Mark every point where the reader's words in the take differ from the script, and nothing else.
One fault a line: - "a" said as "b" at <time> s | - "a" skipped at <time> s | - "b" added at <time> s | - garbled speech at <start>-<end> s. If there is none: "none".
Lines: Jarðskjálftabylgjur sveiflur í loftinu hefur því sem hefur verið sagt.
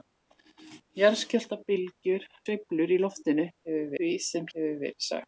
none